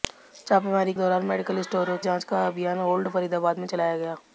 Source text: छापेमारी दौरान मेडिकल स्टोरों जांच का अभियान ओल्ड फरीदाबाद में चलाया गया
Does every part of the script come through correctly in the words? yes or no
yes